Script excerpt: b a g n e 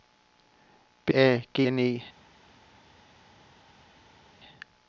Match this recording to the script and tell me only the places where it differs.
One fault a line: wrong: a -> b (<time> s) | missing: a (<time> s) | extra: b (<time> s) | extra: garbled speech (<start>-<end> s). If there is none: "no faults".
no faults